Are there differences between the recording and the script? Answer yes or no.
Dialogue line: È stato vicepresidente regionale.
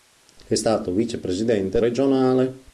no